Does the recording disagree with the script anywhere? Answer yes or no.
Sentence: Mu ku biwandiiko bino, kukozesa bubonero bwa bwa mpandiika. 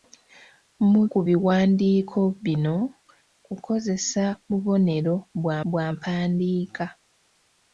no